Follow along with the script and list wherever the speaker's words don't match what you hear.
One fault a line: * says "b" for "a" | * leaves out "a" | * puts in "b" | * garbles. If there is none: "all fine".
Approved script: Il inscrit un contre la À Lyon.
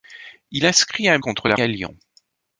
all fine